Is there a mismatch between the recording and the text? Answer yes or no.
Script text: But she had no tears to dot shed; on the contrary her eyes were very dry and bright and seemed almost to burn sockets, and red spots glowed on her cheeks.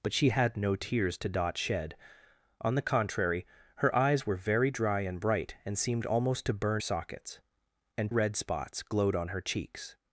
no